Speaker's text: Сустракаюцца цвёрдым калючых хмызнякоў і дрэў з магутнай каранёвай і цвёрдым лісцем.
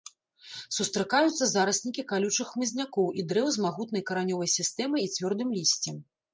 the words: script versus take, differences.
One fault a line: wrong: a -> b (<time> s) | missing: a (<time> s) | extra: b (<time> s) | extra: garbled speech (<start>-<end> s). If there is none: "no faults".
wrong: цвёрдым -> зараснікі (1.5 s)
extra: сістэмай (4.6 s)